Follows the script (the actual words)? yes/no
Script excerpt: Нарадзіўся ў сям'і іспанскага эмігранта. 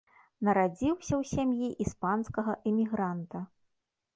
yes